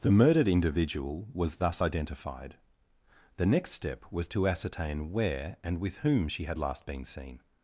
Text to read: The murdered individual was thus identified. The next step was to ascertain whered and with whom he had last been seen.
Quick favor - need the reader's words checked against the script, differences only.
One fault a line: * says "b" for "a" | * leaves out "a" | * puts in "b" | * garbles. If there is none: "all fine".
* says "where" for "whered"
* says "she" for "he"